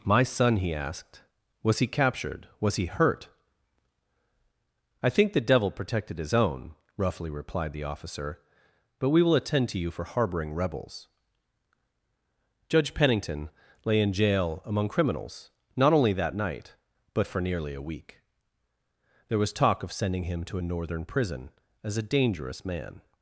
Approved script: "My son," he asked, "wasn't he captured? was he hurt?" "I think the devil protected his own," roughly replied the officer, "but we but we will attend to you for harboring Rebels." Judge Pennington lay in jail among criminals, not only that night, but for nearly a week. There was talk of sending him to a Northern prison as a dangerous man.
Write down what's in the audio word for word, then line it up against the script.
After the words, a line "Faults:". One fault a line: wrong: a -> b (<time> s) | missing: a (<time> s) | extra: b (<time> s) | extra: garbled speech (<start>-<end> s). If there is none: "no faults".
"My son," he asked, "was he captured? was he hurt?" "I think the devil protected his own," roughly replied the officer, "but we will attend to you for harboring Rebels." Judge Pennington lay in jail among criminals, not only that night, but for nearly a week. There was talk of sending him to a Northern prison as a dangerous man.
Faults:
wrong: wasn't -> was (1.6 s)
missing: but we (9.2 s)